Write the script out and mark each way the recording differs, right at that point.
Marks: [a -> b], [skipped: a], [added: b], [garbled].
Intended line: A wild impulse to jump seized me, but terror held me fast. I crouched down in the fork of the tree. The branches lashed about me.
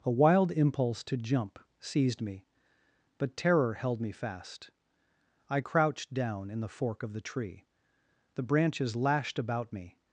A wild impulse to jump seized me, but terror held me fast. I crouched down in the fork of the tree. The branches lashed about me.